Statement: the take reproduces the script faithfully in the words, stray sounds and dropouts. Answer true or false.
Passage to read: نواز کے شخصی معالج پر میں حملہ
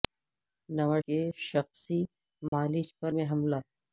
false